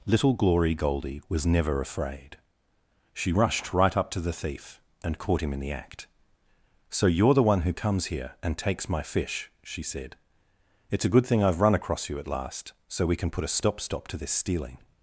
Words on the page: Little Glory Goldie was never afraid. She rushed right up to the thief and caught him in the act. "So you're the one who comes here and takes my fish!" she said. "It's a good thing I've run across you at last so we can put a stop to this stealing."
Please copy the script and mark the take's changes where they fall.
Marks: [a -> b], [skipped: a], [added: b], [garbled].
Little Glory Goldie was never afraid. She rushed right up to the thief and caught him in the act. "So you're the one who comes here and takes my fish!" she said. "It's a good thing I've run across you at last so we can put a stop [added: stop] to this stealing."